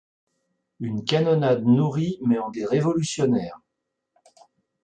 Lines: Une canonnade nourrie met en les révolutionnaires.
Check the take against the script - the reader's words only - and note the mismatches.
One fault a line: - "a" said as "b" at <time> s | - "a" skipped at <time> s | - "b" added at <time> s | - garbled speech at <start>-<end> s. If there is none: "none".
none